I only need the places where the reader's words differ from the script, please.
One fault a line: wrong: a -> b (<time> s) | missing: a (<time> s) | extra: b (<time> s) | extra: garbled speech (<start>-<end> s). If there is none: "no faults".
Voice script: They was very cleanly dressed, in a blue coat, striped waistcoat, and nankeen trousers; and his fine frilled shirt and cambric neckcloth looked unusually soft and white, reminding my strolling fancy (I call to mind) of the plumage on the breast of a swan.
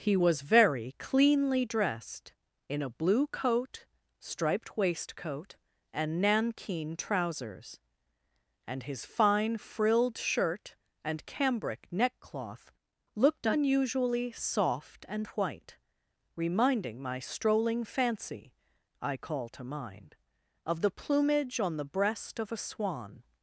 wrong: They -> He (0.0 s)